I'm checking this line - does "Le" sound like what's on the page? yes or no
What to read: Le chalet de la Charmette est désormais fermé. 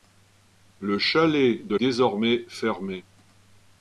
yes